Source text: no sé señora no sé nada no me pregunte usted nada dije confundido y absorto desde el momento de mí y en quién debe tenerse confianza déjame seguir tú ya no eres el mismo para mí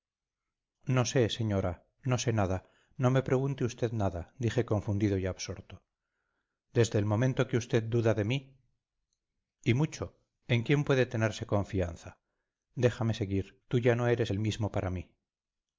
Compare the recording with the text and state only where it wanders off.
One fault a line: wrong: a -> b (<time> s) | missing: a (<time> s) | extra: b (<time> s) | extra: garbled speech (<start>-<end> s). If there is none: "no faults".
extra: que usted duda (7.5 s)
extra: mucho (9.8 s)
wrong: debe -> puede (10.8 s)